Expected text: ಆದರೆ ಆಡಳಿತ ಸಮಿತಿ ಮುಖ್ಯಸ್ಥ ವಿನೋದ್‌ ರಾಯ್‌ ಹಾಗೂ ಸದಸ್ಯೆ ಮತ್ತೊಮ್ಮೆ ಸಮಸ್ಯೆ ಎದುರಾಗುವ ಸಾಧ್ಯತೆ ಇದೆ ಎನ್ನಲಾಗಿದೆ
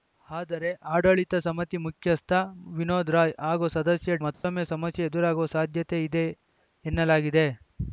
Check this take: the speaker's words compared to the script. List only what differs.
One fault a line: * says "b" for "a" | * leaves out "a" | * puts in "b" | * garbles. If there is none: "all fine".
all fine